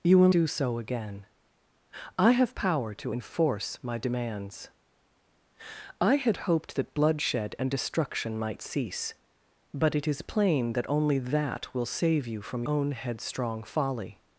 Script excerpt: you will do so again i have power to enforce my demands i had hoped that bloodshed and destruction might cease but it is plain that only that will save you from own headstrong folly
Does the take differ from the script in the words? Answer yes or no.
no